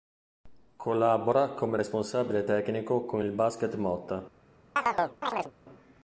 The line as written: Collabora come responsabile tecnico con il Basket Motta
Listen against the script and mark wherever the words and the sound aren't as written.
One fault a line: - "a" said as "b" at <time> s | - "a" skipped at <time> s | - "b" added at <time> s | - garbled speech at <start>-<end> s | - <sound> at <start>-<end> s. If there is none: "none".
- chirp at 4.8-5.5 s